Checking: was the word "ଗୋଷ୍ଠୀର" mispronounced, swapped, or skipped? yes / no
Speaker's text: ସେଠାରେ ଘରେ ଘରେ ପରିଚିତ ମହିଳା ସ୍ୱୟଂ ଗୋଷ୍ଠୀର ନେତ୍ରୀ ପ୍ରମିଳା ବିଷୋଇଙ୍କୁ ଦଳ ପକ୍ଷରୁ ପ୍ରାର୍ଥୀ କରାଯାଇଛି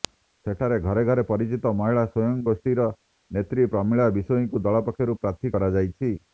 no